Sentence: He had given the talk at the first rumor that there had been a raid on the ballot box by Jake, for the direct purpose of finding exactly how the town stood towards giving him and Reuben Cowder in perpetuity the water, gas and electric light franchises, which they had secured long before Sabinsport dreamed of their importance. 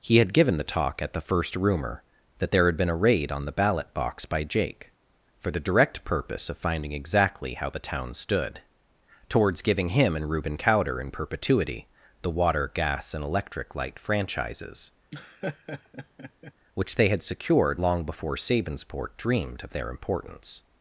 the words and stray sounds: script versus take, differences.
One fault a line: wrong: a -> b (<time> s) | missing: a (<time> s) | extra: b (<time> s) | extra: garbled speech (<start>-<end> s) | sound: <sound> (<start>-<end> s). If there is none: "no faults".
sound: laugh (15.1-16.5 s)